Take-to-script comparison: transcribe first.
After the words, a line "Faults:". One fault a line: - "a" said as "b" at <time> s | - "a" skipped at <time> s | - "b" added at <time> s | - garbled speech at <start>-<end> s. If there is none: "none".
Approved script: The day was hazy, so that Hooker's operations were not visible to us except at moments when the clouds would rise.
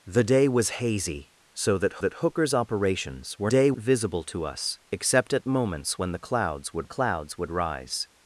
The day was hazy, so that that Hooker's operations were day visible to us except at moments when the clouds would the clouds would rise.
Faults:
- "that" added at 2.0 s
- "not" said as "day" at 3.5 s
- "the clouds would" added at 6.8 s